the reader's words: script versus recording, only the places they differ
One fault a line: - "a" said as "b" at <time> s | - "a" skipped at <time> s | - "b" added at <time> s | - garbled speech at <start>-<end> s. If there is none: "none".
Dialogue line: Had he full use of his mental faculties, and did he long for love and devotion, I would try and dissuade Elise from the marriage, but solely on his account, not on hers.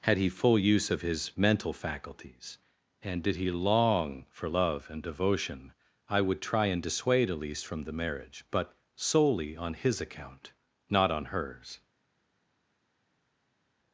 none